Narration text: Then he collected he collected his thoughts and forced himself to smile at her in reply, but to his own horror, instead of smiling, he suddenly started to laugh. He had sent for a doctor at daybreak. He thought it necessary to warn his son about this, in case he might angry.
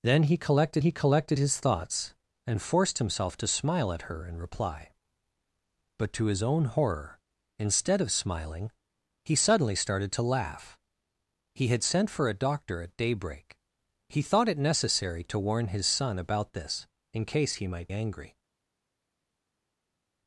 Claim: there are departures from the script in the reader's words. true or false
false